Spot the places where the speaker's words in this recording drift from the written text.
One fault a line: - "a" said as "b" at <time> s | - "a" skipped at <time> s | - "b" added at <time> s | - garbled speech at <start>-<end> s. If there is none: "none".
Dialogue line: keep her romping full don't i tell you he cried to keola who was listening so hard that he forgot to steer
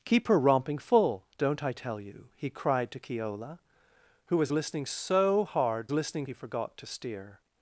- "that" said as "listening" at 5.9 s